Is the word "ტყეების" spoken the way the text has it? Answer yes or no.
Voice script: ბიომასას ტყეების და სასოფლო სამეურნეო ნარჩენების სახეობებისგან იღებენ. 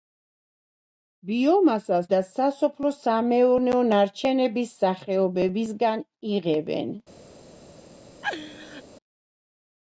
no